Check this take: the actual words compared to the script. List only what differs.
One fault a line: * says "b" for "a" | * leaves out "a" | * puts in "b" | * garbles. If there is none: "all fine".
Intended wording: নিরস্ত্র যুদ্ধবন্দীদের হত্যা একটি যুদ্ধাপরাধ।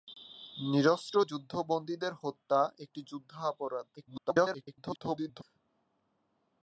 * garbles